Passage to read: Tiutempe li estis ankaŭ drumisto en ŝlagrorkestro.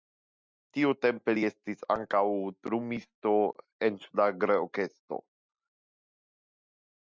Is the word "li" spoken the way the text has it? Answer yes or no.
yes